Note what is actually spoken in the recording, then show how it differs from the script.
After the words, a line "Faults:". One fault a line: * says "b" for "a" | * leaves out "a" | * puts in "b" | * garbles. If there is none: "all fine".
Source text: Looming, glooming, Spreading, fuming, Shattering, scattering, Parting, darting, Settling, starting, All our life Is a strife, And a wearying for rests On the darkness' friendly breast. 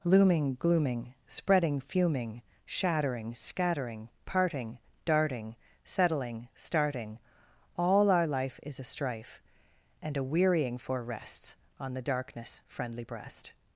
Looming, glooming, Spreading, fuming, Shattering, scattering, Parting, darting, Settling, starting, All our life Is a strife, And a wearying for rests On the darkness' friendly breast.
Faults:
all fine